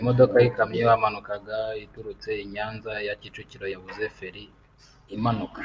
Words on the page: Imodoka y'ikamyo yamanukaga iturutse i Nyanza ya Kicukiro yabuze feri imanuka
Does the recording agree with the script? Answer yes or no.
yes